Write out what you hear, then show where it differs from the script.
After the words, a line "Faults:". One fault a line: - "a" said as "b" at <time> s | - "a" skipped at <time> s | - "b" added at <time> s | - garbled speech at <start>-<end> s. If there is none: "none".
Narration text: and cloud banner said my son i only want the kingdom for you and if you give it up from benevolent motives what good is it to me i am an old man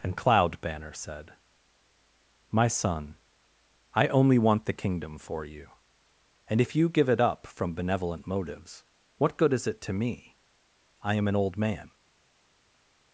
and cloud banner said my son i only want the kingdom for you and if you give it up from benevolent motives what good is it to me i am an old man
Faults:
none